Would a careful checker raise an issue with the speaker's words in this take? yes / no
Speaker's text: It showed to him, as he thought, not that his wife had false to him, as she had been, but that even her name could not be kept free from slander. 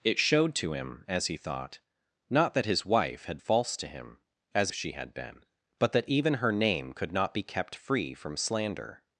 no